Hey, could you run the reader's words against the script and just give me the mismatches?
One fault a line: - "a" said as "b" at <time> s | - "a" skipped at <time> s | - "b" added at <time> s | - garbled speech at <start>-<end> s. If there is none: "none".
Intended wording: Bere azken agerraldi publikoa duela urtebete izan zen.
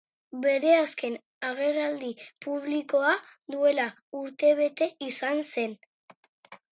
none